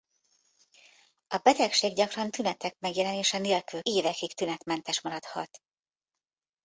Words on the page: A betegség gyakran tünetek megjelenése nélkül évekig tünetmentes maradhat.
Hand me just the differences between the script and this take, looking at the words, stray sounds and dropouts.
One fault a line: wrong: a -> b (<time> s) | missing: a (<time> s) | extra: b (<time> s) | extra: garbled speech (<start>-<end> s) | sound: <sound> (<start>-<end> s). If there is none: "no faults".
no faults